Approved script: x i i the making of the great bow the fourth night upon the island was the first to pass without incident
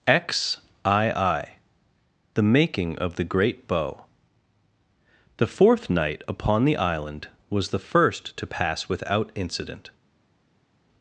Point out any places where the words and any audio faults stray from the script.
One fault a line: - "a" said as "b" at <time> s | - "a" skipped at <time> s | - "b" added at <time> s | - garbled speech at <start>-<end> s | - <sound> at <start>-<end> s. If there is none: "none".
none